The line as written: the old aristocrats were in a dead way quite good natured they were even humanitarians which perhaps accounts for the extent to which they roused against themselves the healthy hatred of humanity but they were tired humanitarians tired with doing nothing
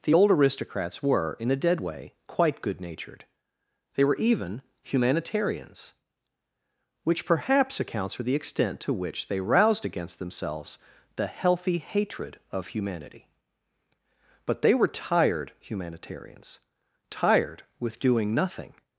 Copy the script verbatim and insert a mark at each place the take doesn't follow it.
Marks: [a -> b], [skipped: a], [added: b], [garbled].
the old aristocrats were in a dead way quite good natured they were even humanitarians which perhaps accounts for the extent to which they roused against themselves the healthy hatred of humanity but they were tired humanitarians tired with doing nothing